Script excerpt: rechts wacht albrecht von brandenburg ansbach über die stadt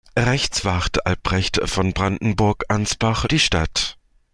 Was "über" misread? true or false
true